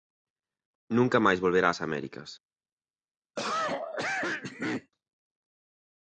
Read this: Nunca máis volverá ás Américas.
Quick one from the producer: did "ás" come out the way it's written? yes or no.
yes